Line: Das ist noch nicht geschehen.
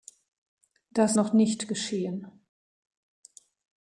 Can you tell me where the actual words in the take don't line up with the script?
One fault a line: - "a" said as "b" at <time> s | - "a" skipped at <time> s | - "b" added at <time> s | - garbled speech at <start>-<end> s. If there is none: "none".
- "ist" skipped at 1.2 s